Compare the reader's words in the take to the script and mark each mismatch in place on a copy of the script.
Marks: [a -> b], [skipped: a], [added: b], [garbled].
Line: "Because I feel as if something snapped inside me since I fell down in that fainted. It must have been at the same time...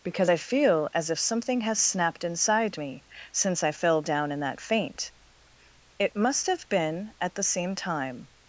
"Because I feel as if something [added: has] snapped inside me since I fell down in that [fainted. -> faint] It must have been at the same time...